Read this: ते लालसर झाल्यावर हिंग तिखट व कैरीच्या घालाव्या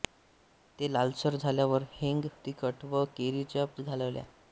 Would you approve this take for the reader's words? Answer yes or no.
yes